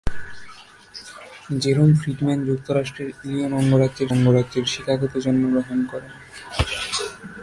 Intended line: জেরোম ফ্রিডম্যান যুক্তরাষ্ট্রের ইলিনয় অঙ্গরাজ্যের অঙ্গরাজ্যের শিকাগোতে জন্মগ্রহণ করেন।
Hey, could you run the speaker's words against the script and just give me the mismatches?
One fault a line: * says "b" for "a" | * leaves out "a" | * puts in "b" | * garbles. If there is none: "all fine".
all fine